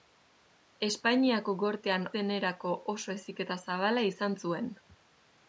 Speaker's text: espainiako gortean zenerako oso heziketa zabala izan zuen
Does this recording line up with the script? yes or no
yes